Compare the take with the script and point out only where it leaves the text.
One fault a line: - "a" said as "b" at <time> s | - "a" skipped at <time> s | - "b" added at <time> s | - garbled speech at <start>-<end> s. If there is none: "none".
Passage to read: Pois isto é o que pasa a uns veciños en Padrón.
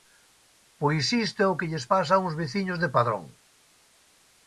- "lles" added at 1.7 s
- "en" said as "de" at 2.8 s